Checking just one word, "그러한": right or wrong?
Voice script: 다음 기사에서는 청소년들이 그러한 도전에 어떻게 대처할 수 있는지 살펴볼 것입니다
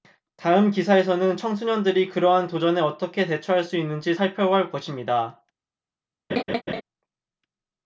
right